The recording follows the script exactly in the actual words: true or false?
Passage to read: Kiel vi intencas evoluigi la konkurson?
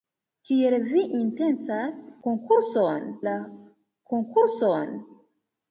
false